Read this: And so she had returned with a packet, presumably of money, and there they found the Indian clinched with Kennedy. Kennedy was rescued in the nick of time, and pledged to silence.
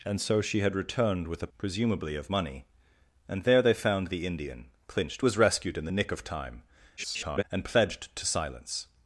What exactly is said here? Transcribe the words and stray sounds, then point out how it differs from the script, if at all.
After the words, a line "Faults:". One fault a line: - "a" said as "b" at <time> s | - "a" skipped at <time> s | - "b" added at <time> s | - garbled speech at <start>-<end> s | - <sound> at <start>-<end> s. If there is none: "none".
And so she had returned with a presumably of money, and there they found the Indian clinched was rescued in the nick of time, [garbled] and pledged to silence.
Faults:
- "packet" skipped at 1.5 s
- "with Kennedy Kennedy" skipped at 5.2 s
- garbled speech at 7.0-7.4 s